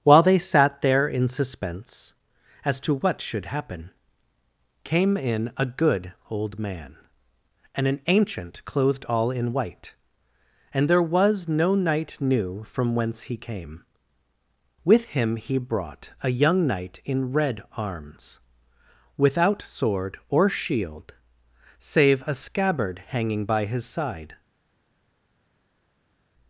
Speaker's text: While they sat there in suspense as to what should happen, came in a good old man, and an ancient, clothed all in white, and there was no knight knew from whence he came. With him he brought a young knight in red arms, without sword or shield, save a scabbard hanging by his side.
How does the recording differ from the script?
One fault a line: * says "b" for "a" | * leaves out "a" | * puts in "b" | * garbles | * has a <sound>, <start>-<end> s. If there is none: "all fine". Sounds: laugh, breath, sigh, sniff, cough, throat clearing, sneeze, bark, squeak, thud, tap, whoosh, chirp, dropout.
all fine